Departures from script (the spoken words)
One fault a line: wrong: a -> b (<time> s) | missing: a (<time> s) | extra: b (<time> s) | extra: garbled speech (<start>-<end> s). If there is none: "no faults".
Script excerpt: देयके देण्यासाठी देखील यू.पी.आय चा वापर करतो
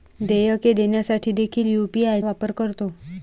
missing: चा (2.2 s)